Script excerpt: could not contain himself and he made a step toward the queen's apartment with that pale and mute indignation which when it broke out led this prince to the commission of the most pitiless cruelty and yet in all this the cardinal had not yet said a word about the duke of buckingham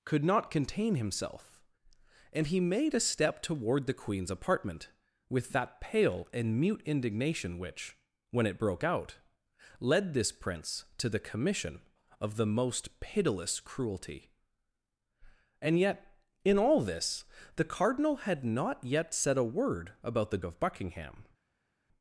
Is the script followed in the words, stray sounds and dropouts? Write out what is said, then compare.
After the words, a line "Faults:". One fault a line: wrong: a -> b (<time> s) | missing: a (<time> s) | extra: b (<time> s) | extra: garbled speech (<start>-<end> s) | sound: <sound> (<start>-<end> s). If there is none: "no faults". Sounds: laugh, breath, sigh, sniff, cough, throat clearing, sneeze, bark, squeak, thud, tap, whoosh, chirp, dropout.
could not contain himself and he made a step toward the queen's apartment with that pale and mute indignation which when it broke out led this prince to the commission of the most pitiless cruelty and yet in all this the cardinal had not yet said a word about the of buckingham
Faults:
missing: duke (20.4 s)